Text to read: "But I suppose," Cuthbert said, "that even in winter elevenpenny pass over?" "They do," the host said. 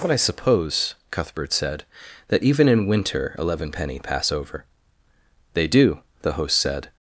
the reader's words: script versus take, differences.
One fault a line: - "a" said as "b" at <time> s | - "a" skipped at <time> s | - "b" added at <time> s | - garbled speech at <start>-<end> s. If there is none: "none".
none